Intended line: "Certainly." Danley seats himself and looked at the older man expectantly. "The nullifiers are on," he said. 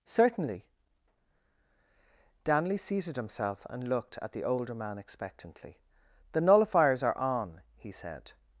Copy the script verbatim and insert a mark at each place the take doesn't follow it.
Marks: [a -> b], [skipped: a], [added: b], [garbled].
"Certainly." Danley [seats -> seated] himself and looked at the older man expectantly. "The nullifiers are on," he said.